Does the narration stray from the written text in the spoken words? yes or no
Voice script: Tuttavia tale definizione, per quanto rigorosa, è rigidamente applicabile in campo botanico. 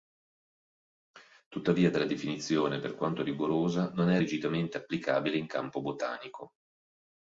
yes